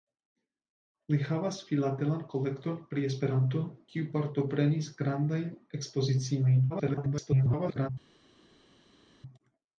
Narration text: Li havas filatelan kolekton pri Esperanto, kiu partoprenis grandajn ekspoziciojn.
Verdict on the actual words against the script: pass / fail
fail